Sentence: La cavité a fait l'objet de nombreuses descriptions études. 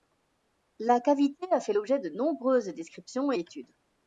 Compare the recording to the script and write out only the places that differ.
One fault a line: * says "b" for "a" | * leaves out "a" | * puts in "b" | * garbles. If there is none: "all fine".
all fine